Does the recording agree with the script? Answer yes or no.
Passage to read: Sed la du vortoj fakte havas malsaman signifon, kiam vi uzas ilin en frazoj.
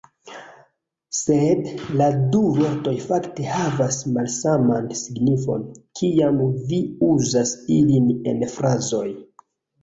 yes